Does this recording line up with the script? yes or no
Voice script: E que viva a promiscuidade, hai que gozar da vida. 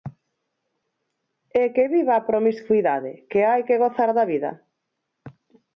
no